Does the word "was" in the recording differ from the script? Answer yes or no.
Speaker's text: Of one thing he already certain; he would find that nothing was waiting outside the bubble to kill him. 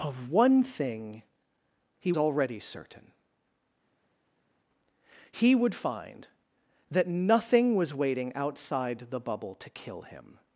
no